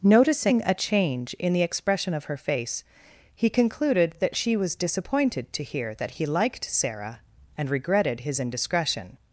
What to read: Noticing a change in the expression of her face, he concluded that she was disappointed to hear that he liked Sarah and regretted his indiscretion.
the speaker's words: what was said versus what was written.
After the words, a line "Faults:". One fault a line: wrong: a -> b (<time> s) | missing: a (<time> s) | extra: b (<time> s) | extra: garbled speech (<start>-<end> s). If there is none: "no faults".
Noticing a change in the expression of her face, he concluded that she was disappointed to hear that he liked Sarah and regretted his indiscretion.
Faults:
no faults